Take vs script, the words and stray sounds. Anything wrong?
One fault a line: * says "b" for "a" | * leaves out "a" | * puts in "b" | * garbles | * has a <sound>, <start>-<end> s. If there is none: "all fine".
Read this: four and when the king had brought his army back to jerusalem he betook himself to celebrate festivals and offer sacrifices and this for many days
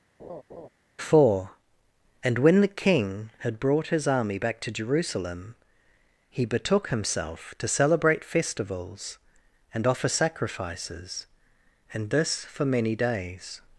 * has a laugh, 0.2-0.7 s